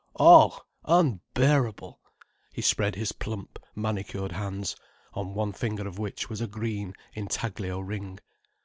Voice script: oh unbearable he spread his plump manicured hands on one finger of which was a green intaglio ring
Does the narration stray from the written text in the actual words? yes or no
no